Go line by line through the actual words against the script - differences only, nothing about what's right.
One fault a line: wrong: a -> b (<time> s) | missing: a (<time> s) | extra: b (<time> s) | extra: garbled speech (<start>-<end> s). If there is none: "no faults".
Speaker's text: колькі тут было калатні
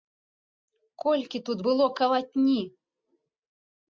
no faults